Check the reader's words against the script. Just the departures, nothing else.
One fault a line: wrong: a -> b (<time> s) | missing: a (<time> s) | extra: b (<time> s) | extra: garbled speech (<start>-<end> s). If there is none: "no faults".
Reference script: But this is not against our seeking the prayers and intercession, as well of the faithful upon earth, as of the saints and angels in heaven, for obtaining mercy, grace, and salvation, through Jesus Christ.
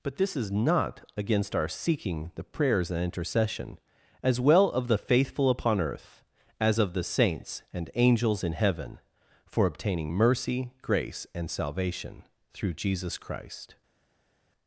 no faults